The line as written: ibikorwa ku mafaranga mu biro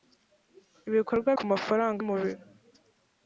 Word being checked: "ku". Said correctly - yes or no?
yes